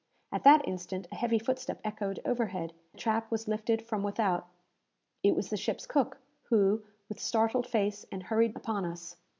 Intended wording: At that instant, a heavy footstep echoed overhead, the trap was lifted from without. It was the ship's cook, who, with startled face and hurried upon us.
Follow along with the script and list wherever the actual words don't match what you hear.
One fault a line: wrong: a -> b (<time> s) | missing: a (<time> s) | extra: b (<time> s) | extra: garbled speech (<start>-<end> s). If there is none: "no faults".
no faults